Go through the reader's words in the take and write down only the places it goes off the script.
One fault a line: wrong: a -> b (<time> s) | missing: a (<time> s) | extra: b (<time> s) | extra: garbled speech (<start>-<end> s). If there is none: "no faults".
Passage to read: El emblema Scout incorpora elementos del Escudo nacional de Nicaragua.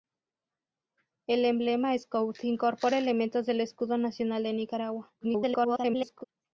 extra: garbled speech (5.2-6.2 s)